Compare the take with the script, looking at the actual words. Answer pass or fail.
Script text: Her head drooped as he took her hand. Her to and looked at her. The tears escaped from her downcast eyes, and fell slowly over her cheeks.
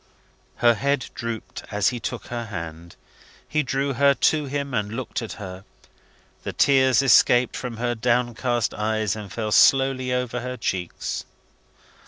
fail